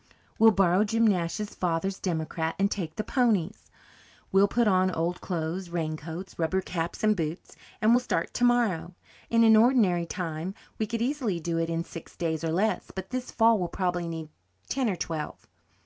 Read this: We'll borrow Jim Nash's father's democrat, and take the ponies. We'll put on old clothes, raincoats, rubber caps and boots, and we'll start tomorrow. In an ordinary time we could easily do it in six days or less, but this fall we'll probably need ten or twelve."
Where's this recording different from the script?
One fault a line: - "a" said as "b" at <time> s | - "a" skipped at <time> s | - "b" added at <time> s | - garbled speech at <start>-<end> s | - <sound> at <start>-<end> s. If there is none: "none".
none